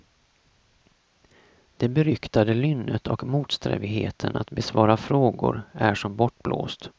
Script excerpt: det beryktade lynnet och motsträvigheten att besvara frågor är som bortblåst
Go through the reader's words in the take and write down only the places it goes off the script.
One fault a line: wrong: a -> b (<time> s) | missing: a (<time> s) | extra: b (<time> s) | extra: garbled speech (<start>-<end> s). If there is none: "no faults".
no faults